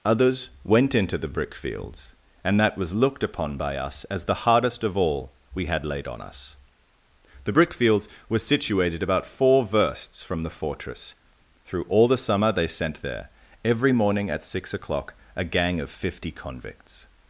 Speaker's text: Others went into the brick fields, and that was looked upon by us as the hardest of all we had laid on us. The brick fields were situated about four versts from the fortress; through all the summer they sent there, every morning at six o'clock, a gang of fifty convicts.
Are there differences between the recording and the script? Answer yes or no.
no